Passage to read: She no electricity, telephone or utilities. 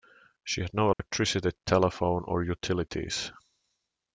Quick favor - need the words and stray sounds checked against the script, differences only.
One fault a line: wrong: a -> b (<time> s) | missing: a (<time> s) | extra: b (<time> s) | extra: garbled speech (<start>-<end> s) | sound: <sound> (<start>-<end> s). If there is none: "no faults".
extra: had (0.6 s)
sound: dropout (0.9-1.0 s)